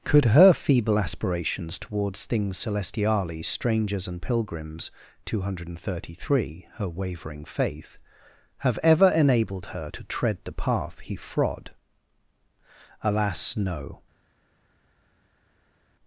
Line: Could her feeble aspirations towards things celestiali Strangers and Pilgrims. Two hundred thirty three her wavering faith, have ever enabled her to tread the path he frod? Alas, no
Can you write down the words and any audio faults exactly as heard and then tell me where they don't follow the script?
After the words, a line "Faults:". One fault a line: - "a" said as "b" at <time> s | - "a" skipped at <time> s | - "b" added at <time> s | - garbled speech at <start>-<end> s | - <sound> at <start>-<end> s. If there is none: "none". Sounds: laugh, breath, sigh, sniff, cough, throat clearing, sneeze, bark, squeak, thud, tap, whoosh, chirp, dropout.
Could her feeble aspirations towards things celestiali Strangers and Pilgrims. Two hundred thirty three her wavering faith, have ever enabled her to tread the path he frod? Alas, no
Faults:
none